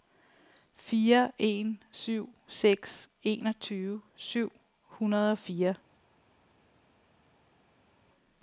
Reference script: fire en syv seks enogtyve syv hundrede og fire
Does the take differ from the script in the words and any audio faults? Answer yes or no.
no